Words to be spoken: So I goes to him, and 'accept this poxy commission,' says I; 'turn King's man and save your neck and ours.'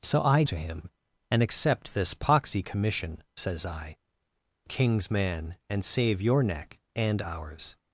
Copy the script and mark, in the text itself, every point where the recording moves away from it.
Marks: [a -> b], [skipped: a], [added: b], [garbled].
So I [skipped: goes] to him, and 'accept this poxy commission,' says I; [skipped: 'turn] King's man and save your neck and ours.'